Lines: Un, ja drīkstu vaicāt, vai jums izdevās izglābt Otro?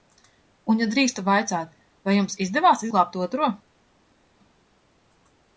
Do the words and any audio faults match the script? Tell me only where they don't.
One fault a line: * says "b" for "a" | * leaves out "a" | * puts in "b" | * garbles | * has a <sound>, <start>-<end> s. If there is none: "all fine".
all fine